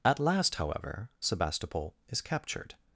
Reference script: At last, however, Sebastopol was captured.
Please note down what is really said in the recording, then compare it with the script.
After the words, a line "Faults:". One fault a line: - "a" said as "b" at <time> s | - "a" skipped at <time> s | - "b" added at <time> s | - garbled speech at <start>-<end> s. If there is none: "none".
At last, however, Sebastopol is captured.
Faults:
- "was" said as "is" at 2.1 s